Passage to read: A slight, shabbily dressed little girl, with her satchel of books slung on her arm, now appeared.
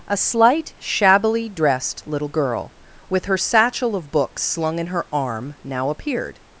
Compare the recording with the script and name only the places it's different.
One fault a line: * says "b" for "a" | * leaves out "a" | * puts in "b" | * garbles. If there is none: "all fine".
* says "in" for "on"